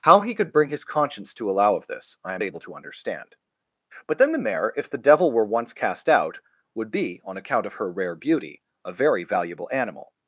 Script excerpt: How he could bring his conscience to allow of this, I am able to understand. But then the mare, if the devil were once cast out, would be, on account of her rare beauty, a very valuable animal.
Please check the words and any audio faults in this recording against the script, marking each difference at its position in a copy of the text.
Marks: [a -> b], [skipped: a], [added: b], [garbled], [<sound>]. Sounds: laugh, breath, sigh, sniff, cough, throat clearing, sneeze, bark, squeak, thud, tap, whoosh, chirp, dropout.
How he could bring his conscience to allow of this, I am able to understand. But then the mare, if the devil were once cast out, would be, on account of her rare beauty, a very valuable animal.